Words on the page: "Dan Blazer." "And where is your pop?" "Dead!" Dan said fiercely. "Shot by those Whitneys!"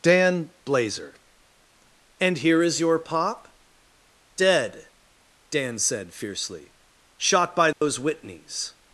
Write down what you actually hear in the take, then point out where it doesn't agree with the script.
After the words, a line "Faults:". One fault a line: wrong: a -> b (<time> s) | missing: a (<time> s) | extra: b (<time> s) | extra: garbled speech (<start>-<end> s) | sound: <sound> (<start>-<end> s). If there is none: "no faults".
"Dan Blazer." "And here is your pop?" "Dead!" Dan said fiercely. "Shot by those Whitneys!"
Faults:
wrong: where -> here (2.4 s)
sound: dropout (7.7-7.8 s)